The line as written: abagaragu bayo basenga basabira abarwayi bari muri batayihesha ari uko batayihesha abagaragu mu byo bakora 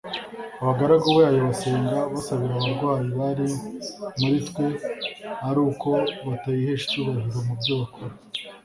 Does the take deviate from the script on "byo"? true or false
false